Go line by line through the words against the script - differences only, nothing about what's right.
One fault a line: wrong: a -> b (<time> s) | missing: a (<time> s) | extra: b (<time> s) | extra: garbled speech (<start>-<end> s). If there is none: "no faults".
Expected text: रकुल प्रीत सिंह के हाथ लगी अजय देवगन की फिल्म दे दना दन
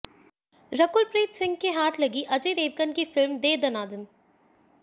no faults